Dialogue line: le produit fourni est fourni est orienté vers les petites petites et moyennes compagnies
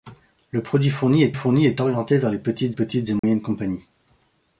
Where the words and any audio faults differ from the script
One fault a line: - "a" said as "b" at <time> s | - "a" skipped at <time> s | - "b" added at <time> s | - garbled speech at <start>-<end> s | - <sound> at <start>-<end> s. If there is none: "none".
- dropout at 3.2-3.2 s